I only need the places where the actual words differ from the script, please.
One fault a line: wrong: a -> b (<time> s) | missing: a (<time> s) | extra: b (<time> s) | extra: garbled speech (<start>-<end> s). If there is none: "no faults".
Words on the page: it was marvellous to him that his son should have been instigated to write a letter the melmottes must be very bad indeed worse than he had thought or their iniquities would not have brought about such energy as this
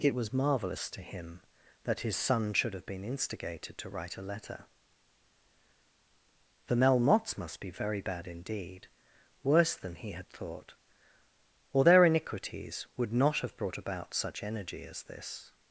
no faults